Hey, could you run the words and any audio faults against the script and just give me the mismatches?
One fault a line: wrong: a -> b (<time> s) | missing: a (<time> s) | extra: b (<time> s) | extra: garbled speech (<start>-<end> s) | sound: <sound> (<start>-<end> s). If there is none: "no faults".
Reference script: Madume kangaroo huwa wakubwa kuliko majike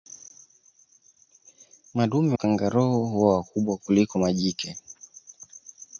no faults